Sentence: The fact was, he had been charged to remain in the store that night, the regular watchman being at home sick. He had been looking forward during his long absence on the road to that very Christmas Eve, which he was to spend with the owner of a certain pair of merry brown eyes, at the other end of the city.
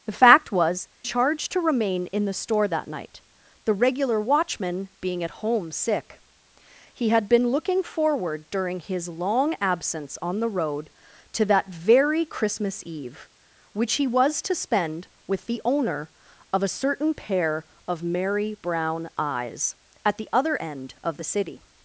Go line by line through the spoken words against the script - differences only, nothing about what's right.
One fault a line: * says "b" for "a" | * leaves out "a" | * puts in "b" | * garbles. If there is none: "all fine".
* leaves out "he had been"